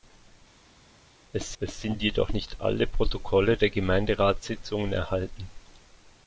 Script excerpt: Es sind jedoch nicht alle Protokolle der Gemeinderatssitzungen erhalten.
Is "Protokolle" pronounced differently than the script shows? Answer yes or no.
no